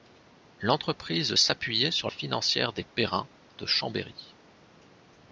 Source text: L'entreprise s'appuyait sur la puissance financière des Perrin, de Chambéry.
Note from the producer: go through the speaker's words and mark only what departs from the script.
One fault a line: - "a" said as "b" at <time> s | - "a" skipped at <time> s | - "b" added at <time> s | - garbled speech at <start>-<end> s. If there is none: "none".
- "la puissance" skipped at 2.1 s